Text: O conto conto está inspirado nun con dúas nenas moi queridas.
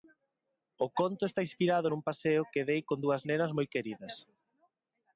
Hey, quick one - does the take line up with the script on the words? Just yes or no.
no